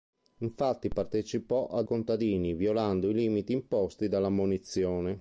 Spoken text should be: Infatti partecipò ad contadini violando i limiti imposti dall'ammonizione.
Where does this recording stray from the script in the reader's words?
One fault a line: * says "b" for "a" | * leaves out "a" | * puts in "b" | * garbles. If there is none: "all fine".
all fine